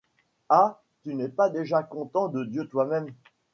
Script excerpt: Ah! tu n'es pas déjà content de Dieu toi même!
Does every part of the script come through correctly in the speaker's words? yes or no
yes